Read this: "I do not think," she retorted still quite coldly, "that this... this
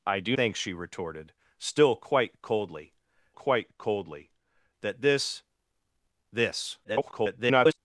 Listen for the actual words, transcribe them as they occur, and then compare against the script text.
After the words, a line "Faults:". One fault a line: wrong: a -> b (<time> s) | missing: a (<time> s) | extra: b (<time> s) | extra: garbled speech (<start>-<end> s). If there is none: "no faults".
"I do think," she retorted still quite coldly quite coldly, "that this... this [garbled]
Faults:
missing: not (0.3 s)
extra: quite coldly (3.3 s)
extra: garbled speech (6.8-7.8 s)